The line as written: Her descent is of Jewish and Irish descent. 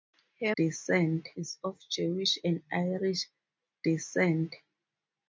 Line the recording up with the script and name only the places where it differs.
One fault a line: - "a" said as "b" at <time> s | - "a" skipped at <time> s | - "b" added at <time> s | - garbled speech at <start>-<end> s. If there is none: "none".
none